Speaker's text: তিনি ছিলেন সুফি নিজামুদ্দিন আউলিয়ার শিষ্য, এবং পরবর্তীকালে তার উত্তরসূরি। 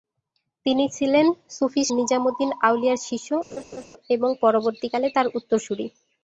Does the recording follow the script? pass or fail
pass